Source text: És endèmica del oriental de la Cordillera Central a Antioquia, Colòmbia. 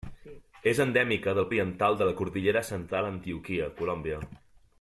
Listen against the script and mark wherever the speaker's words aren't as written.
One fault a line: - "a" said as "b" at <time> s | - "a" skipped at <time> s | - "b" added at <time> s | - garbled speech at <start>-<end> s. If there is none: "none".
none